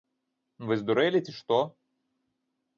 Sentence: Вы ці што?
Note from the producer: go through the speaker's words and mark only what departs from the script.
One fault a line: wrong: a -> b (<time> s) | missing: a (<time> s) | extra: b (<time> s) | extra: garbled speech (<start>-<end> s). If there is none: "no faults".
extra: здурэлі (0.8 s)